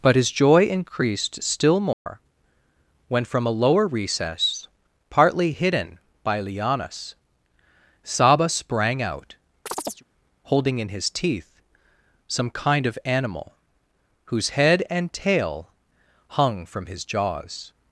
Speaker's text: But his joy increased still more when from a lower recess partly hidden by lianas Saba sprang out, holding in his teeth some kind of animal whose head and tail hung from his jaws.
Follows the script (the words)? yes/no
yes